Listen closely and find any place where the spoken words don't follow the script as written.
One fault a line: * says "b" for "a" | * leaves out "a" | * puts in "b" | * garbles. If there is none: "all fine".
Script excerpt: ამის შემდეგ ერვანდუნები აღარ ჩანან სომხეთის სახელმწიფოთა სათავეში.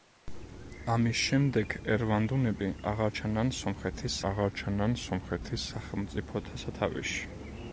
* puts in "აღარ ჩანან სომხეთის"